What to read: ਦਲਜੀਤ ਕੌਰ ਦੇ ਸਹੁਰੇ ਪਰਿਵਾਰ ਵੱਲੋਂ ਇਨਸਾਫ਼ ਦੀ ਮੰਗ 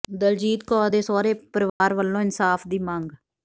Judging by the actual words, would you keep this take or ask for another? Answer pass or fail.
pass